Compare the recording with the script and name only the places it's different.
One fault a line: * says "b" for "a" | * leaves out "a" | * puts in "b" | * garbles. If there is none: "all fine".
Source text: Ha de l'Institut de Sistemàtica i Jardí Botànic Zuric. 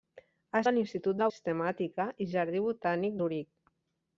all fine